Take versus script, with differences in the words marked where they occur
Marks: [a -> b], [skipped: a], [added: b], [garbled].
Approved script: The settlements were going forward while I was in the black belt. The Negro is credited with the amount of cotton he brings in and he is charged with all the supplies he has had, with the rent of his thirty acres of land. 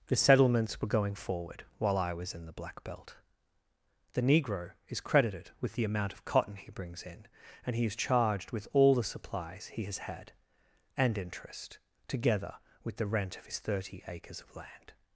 The settlements were going forward while I was in the black belt. The Negro is credited with the amount of cotton he brings in and he is charged with all the supplies he has had, [added: and interest together] with the rent of his thirty acres of land.